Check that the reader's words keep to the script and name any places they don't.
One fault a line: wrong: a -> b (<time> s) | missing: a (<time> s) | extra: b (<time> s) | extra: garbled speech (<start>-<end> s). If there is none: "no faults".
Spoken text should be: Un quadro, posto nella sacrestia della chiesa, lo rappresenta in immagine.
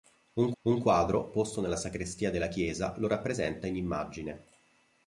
extra: un (0.6 s)